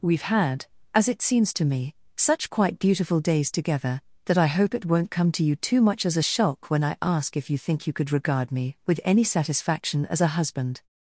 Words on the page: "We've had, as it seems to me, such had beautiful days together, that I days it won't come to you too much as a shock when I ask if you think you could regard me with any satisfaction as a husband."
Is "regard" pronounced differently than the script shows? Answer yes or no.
no